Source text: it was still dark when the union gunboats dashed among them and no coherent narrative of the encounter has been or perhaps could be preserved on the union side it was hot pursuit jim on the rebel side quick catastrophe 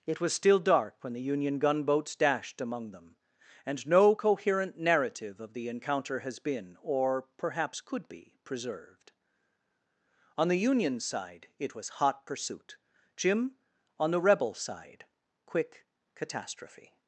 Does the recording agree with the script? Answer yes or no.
yes